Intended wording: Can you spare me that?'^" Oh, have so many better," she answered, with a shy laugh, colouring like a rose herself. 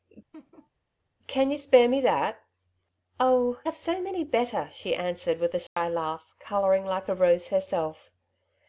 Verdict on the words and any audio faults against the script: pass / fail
fail